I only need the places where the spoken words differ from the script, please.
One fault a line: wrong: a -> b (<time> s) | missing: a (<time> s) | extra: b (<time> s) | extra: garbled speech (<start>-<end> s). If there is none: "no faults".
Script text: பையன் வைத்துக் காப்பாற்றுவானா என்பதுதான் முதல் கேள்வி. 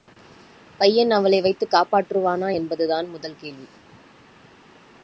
extra: அவளை (1.1 s)